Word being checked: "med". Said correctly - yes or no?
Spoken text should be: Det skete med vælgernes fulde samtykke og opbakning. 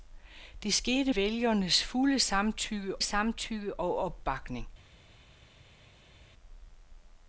no